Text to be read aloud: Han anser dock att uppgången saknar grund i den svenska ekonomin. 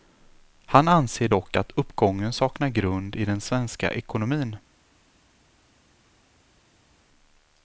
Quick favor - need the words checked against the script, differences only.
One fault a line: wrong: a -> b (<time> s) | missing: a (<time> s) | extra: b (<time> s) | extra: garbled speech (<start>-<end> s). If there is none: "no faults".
no faults